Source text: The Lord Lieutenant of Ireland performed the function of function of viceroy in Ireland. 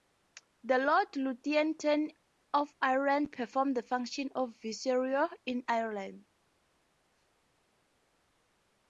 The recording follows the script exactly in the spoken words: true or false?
false